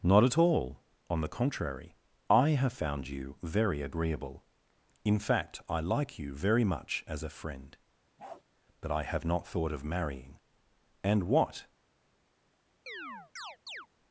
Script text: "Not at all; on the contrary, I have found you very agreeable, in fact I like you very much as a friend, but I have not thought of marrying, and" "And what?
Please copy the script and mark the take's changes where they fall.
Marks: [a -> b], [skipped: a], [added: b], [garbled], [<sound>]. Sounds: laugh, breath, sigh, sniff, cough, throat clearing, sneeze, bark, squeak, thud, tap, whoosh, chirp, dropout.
"Not at all; on the contrary, I have found you very agreeable, in fact I like you very much as a friend, [bark] but I have not thought of marrying, and" [skipped: "And] what? [chirp]